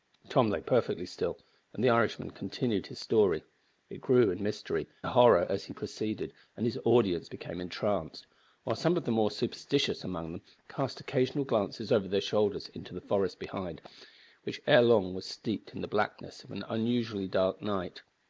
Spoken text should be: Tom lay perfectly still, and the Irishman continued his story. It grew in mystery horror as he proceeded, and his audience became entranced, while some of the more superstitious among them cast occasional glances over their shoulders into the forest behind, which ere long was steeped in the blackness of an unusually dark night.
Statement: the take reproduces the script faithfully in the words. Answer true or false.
true